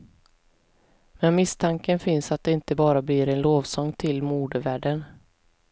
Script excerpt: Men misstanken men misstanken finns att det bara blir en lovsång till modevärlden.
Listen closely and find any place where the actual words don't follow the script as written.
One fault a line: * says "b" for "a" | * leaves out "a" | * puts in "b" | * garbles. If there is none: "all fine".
* leaves out "men misstanken"
* puts in "inte"